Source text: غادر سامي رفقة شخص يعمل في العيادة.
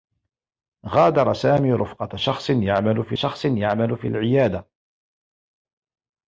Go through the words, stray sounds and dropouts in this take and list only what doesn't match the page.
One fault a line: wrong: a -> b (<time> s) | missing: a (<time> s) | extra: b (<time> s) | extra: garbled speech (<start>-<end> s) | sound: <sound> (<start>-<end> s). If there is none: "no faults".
extra: شخص يعمل في (3.1 s)